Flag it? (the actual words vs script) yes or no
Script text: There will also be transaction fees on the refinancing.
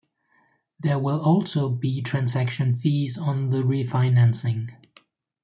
no